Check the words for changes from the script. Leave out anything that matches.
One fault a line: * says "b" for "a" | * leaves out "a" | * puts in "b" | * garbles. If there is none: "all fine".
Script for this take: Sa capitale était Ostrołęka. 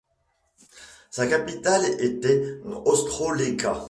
all fine